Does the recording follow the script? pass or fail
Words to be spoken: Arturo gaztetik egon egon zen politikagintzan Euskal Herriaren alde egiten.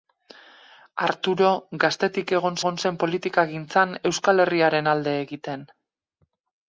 pass